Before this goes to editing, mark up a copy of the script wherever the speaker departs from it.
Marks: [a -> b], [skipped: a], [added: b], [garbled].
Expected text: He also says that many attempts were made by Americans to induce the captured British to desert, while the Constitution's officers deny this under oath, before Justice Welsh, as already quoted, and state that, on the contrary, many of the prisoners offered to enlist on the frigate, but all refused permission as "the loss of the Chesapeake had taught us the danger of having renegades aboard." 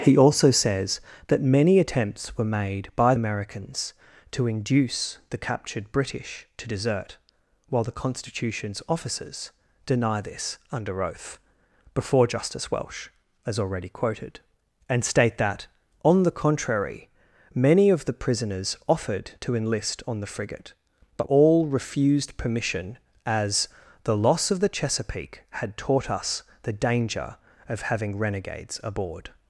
He also says that many attempts were made by Americans to induce the captured British to desert, while the Constitution's officers deny this under oath, before Justice Welsh, as already quoted, and state that, on the contrary, many of the prisoners offered to enlist on the frigate, but all refused permission as "the loss of the Chesapeake had taught us the danger of having renegades aboard."